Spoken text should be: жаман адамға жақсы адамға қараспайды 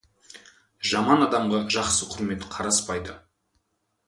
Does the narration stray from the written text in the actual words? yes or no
yes